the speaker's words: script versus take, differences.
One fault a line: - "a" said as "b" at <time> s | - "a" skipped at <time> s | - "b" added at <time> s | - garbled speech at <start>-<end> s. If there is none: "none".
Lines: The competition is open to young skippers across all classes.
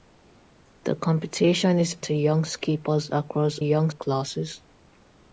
- "open" skipped at 1.9 s
- "all" said as "young" at 3.6 s